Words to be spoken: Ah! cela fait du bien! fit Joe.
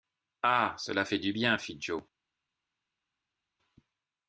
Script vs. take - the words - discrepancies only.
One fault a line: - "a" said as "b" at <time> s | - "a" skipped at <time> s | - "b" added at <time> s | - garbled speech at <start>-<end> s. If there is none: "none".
none